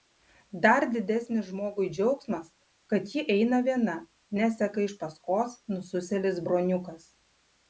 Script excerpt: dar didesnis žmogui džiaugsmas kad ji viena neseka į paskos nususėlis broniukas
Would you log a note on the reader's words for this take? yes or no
yes